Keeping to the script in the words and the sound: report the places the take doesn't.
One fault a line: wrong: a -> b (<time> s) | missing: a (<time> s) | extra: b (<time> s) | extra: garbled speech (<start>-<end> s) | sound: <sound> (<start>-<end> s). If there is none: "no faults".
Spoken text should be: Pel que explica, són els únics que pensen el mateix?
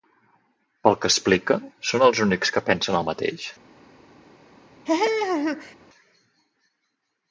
sound: laugh (4.9-5.8 s)